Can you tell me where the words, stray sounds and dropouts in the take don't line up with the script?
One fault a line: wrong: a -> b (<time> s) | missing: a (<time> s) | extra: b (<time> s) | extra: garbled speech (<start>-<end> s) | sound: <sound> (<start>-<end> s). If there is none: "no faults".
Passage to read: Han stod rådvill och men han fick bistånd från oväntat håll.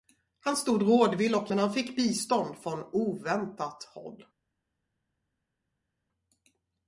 no faults